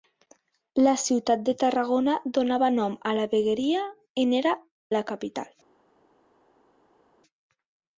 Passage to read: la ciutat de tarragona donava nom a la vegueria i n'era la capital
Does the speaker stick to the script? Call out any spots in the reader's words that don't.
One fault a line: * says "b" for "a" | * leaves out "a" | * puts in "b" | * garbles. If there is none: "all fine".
all fine